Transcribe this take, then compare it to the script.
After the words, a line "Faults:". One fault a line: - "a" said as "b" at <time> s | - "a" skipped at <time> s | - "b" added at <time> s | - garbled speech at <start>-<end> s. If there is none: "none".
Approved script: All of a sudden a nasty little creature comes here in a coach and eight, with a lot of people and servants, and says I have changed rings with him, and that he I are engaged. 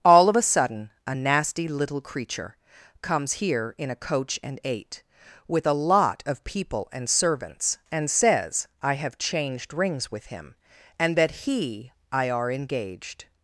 All of a sudden a nasty little creature comes here in a coach and eight, with a lot of people and servants, and says I have changed rings with him, and that he I are engaged.
Faults:
none